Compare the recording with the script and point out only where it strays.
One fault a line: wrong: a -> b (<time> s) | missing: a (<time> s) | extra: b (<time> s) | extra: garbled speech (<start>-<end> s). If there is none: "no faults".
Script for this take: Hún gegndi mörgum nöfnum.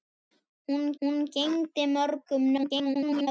extra: hún (1.0 s)
extra: garbled speech (2.6-3.3 s)